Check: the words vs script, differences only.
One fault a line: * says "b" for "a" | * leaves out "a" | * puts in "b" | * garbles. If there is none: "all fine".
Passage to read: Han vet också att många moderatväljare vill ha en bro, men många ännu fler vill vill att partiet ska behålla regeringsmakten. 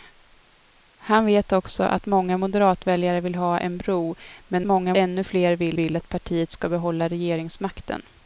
all fine